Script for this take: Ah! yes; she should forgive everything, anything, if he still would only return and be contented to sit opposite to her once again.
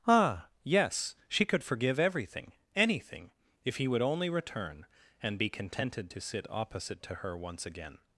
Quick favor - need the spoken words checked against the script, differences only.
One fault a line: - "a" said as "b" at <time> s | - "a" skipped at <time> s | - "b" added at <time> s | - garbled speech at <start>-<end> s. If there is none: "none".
- "should" said as "could" at 1.4 s
- "still" skipped at 3.9 s